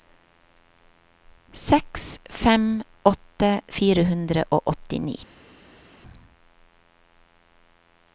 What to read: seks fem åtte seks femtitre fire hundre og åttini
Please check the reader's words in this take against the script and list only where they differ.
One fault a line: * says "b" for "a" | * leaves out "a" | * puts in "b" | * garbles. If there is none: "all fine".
* leaves out "seks femtitre"